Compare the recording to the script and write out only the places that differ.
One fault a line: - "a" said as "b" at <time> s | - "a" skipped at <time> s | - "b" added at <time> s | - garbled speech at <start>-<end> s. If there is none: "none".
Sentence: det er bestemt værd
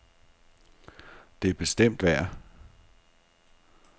none